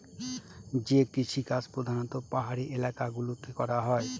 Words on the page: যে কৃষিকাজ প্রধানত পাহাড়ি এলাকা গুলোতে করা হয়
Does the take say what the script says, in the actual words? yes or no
yes